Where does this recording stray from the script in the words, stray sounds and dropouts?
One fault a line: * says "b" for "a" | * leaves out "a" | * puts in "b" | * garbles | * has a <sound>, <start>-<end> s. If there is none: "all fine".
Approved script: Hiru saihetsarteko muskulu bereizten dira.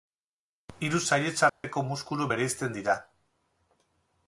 * has a dropout, 1.5-1.6 s